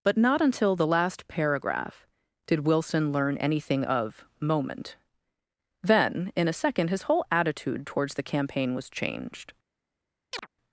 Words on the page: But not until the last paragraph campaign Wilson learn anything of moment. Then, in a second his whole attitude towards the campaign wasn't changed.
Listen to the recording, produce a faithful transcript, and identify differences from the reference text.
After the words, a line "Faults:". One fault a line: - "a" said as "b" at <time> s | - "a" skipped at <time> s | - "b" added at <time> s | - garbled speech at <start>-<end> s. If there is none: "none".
But not until the last paragraph did Wilson learn anything of moment. Then, in a second his whole attitude towards the campaign was changed.
Faults:
- "campaign" said as "did" at 2.5 s
- "wasn't" said as "was" at 8.7 s